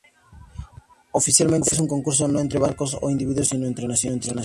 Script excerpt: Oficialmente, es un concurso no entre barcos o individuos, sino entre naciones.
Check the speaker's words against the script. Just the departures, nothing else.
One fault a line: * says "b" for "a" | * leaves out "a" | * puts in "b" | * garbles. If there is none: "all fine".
all fine